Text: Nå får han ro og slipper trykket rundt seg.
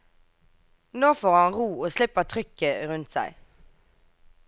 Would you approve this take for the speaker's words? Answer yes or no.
yes